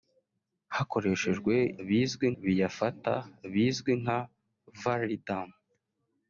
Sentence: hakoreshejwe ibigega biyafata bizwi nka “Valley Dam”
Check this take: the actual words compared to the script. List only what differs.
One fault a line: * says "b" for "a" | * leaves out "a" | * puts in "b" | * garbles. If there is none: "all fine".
* says "bizwi" for "ibigega"